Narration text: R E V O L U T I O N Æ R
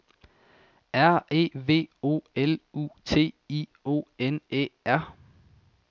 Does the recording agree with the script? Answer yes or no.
yes